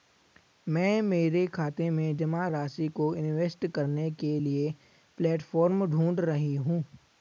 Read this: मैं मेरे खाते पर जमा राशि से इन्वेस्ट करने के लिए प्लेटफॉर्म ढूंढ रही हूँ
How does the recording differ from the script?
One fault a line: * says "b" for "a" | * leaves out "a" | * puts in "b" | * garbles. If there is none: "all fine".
* says "में" for "पर"
* says "को" for "से"